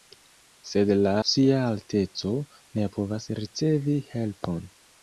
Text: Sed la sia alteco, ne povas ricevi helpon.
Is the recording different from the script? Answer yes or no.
no